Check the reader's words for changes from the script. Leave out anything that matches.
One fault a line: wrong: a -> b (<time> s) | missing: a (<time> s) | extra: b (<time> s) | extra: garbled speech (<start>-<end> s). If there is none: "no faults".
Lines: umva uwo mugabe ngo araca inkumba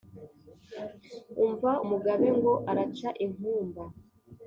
missing: uwo (1.7 s)